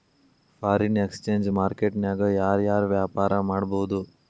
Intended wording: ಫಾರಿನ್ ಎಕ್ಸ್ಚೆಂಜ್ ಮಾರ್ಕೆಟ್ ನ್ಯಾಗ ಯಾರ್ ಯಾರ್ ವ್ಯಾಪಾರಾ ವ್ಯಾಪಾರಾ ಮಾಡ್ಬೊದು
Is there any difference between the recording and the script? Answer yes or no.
yes